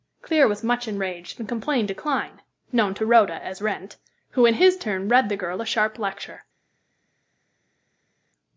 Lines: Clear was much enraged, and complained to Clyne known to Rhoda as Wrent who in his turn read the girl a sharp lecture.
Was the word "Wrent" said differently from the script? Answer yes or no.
no